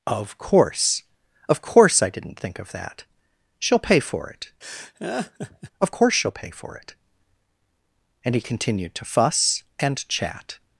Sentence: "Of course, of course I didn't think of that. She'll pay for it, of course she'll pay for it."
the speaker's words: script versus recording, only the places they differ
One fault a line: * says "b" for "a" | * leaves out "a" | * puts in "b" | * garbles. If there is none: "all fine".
* puts in "And he continued to fuss and chat"